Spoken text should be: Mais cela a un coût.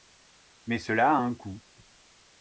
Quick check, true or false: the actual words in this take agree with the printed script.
true